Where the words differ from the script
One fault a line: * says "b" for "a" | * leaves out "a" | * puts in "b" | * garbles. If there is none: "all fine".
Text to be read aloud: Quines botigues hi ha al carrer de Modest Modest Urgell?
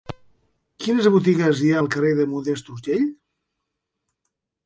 * leaves out "Modest"